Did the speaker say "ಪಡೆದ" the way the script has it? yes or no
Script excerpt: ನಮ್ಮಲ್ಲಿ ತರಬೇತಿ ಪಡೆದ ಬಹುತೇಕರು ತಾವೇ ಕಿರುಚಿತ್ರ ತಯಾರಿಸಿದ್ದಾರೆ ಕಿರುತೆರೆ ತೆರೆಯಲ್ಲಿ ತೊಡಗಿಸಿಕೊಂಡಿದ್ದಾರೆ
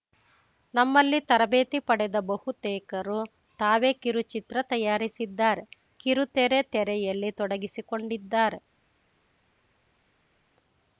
yes